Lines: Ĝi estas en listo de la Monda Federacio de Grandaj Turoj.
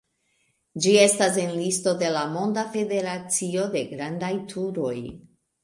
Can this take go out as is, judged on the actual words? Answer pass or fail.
pass